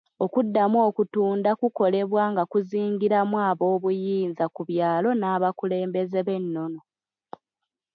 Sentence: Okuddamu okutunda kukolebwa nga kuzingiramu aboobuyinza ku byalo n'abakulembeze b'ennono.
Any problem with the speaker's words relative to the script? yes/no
no